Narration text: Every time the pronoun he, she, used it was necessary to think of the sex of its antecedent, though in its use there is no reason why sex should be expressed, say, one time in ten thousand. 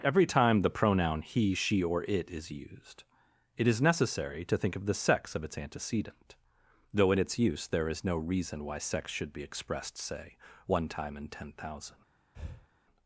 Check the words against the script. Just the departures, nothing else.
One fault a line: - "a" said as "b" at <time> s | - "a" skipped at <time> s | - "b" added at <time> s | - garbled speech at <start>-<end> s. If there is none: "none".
- "or it is" added at 1.8 s
- "was" said as "is" at 3.7 s